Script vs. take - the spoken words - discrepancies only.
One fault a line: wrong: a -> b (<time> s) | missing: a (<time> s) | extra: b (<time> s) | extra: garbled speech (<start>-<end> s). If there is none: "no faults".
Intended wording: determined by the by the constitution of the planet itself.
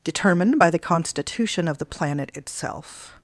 missing: by the (0.8 s)